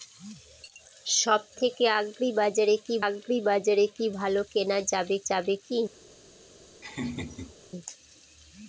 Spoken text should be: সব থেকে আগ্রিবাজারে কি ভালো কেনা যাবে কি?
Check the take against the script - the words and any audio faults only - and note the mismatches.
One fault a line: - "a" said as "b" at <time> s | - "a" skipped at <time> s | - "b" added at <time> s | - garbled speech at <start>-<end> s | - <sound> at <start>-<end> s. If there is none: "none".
- "আগ্রিবাজারে কি" added at 3.1 s
- "যাবে" added at 5.3 s
- laugh at 6.8-7.6 s